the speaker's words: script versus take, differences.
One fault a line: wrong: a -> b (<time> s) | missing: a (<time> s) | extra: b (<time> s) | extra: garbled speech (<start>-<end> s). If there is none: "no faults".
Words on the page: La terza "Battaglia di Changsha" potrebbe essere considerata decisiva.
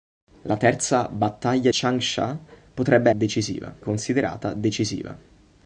missing: di (1.7 s)
wrong: essere -> decisiva (3.1 s)